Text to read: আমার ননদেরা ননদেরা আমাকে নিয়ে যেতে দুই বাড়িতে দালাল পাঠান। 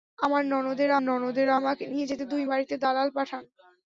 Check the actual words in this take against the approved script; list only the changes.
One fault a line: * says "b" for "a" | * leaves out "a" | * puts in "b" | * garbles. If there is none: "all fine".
all fine